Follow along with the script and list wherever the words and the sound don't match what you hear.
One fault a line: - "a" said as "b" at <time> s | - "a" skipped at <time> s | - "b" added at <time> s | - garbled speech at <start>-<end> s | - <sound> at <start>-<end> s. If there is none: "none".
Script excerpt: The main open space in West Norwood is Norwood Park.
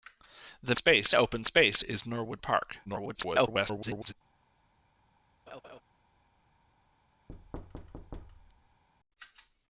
- "main" said as "space" at 0.7 s
- "in West Norwood" skipped at 1.8 s
- garbled speech at 2.8-4.1 s
- laugh at 5.5-5.8 s
- thud at 7.3-8.8 s